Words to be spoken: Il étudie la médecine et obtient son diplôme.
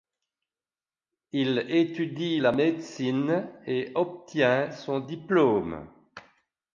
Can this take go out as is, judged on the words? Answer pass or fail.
pass